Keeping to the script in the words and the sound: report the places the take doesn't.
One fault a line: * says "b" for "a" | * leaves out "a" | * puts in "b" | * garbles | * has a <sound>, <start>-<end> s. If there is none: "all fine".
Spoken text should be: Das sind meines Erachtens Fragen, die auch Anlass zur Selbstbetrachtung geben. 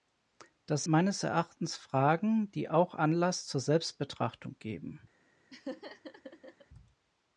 * leaves out "sind"
* has a laugh, 5.5-6.7 s